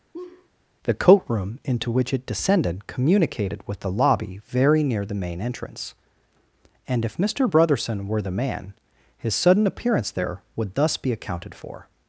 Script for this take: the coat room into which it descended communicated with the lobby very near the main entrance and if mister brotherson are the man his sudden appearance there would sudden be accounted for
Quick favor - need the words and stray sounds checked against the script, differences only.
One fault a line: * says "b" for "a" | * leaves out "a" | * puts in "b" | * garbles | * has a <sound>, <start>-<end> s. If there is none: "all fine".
* has a laugh, 0.1-0.5 s
* says "were" for "are"
* says "thus" for "sudden"